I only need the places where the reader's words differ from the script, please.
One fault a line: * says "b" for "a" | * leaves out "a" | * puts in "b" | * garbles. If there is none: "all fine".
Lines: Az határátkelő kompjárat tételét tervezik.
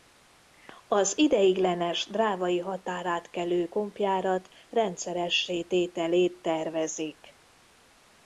* puts in "ideiglenes drávai"
* puts in "rendszeressé"